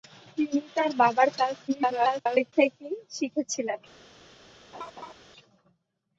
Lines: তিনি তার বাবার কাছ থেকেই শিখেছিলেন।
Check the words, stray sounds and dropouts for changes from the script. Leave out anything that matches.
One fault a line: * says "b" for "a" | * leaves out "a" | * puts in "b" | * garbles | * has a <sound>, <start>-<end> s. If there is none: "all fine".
* garbles
* has a laugh, 4.7-5.1 s